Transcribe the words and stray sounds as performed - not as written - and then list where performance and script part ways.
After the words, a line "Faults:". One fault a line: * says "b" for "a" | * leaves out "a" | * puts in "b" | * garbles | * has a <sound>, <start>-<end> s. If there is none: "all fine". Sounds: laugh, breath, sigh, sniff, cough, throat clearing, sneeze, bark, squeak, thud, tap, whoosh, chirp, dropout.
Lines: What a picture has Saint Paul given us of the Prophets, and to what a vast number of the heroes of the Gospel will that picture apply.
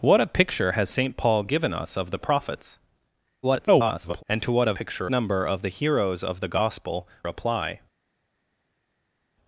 What a picture has Saint Paul given us of the Prophets, [garbled] and to what a picture number of the heroes of the Gospel apply.
Faults:
* garbles
* says "picture" for "vast"
* leaves out "will that picture"